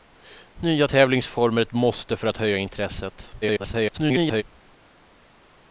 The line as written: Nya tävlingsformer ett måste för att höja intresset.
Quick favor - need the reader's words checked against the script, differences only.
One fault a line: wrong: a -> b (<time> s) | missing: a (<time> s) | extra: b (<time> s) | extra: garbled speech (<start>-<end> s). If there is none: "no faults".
extra: garbled speech (3.4-4.4 s)